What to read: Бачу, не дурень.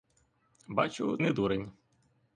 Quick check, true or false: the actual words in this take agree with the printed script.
true